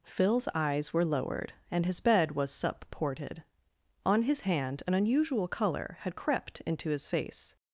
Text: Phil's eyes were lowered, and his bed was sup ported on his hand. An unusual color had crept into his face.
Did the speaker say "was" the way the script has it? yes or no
yes